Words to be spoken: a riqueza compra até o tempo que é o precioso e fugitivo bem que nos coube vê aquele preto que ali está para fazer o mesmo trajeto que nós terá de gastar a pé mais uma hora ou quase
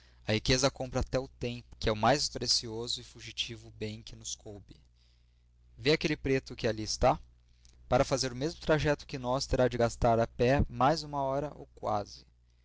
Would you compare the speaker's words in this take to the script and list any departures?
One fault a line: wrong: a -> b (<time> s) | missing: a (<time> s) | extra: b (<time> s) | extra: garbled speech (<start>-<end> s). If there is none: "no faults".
extra: mais (1.9 s)